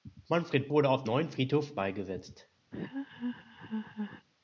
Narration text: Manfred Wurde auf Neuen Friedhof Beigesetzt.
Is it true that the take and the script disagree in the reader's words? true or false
false